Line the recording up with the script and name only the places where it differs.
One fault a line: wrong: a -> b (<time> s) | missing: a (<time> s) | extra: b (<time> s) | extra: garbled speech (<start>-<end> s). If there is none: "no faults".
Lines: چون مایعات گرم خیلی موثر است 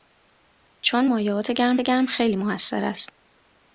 extra: گرم (1.8 s)